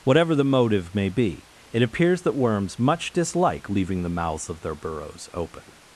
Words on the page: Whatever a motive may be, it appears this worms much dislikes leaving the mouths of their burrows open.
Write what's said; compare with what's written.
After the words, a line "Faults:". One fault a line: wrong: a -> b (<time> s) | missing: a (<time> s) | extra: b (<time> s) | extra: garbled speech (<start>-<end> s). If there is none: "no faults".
Whatever the motive may be, it appears that worms much dislike leaving the mouths of their burrows open.
Faults:
wrong: a -> the (0.3 s)
wrong: this -> that (2.2 s)
wrong: dislikes -> dislike (3.1 s)